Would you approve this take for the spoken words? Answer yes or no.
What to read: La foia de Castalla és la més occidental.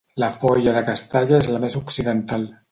yes